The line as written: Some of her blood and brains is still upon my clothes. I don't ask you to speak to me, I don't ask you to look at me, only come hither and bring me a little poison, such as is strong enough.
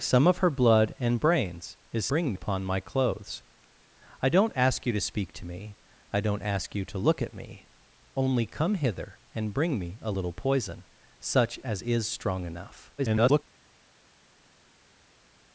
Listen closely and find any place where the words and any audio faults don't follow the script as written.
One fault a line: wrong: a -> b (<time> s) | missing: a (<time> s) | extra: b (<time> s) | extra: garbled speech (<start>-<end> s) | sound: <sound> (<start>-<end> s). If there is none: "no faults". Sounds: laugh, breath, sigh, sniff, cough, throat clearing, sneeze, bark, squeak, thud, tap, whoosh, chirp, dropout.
wrong: still -> bring (2.1 s)
extra: garbled speech (13.0-13.4 s)